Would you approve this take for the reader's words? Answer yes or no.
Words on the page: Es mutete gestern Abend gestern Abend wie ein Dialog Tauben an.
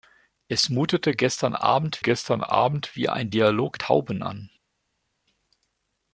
yes